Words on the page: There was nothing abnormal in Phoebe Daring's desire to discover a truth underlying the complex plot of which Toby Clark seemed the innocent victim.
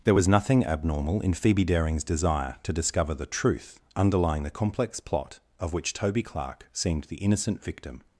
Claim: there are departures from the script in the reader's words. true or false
true